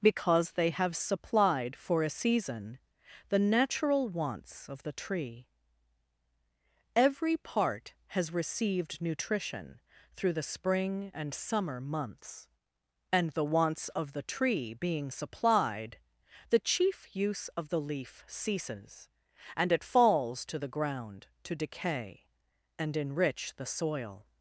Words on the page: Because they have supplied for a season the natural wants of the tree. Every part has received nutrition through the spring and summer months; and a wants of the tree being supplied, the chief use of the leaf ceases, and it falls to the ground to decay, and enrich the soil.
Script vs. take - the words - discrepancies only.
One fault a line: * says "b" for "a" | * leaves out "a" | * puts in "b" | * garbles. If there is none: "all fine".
* says "the" for "a"